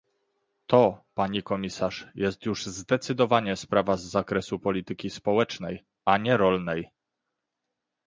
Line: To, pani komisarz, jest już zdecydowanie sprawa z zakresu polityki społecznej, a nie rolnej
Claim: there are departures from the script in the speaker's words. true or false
false